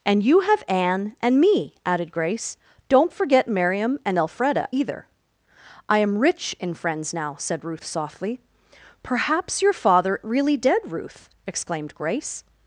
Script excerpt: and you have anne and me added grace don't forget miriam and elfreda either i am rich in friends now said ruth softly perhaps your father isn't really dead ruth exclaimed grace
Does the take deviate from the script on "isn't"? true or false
true